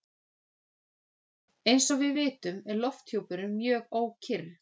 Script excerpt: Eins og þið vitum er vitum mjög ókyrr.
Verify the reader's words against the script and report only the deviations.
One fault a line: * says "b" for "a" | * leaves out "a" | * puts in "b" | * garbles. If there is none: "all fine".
* says "við" for "þið"
* says "lofthjúpurinn" for "vitum"